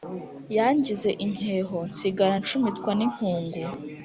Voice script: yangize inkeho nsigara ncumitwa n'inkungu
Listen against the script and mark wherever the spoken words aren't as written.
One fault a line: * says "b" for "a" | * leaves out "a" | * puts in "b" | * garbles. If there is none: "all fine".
all fine